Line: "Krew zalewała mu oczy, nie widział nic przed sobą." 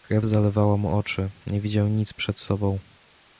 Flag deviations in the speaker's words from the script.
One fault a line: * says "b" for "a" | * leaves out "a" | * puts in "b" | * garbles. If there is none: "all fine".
all fine